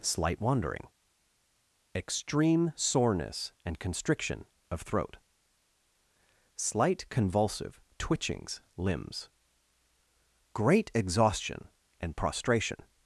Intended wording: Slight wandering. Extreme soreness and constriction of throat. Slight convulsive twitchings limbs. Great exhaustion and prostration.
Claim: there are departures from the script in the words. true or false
false